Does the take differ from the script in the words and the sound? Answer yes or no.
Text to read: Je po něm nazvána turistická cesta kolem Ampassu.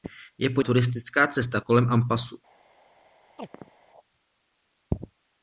yes